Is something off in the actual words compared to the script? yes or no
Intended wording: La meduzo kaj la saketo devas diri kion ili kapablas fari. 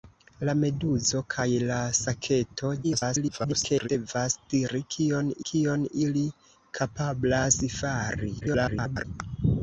yes